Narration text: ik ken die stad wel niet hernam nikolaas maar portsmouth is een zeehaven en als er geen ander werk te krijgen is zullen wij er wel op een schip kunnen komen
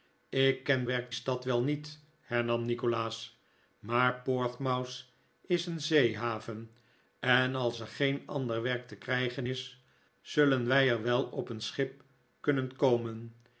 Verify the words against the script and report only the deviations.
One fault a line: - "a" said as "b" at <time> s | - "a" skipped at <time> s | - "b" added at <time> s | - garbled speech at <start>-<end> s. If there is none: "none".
- "die" said as "werk" at 0.8 s